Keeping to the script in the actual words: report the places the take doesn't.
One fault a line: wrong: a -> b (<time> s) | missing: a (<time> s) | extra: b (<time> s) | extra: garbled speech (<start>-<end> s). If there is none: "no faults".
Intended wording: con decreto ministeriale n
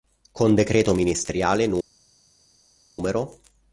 no faults